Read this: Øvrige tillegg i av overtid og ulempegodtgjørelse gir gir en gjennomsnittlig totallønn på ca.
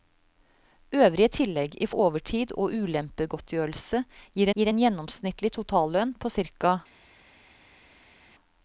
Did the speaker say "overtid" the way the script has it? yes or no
yes